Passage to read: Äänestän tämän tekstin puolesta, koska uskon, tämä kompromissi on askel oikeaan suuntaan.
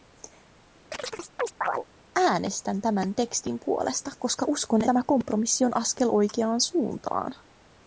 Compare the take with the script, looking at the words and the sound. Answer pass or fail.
fail